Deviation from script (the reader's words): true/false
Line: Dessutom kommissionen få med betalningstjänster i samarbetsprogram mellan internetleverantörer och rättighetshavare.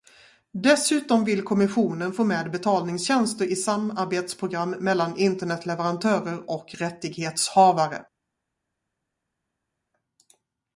true